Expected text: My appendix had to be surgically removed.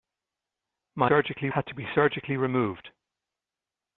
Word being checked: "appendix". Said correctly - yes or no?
no